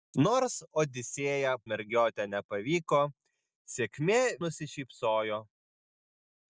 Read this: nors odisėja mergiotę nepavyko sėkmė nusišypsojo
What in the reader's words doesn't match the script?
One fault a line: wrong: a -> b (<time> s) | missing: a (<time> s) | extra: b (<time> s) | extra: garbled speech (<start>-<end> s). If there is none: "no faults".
no faults